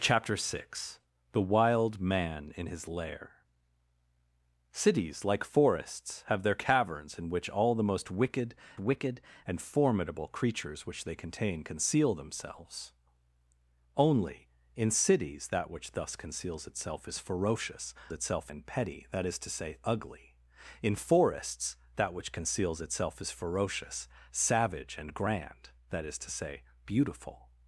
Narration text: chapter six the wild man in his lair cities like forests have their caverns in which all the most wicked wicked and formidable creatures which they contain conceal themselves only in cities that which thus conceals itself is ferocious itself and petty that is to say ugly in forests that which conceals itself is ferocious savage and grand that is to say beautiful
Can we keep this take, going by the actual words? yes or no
yes